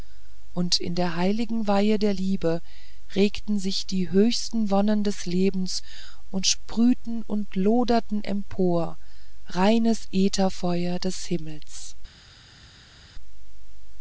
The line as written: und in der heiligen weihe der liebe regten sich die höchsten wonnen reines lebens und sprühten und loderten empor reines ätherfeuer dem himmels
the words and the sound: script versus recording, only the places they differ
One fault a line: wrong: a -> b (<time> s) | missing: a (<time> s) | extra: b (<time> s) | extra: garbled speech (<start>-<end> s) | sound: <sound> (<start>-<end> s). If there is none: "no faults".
wrong: reines -> des (5.0 s)
wrong: dem -> des (11.0 s)